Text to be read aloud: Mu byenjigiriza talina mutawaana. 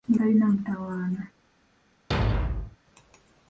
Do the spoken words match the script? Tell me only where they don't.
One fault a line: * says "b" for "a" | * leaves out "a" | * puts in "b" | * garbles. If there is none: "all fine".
* leaves out "byenjigiriza"